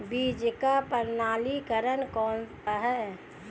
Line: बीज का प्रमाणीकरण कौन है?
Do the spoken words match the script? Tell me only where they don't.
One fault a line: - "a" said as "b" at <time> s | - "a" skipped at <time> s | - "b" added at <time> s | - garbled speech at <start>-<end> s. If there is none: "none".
none